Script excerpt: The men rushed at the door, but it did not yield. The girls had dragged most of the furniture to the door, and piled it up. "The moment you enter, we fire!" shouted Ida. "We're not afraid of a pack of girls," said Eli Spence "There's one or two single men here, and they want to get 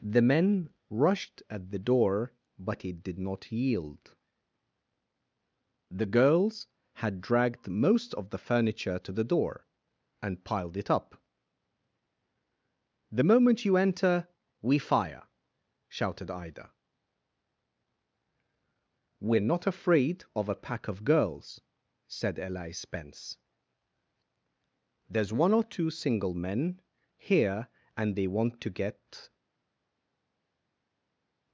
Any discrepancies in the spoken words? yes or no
no